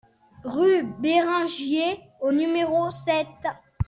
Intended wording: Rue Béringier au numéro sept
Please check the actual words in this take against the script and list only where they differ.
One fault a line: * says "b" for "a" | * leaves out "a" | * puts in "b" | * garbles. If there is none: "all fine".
all fine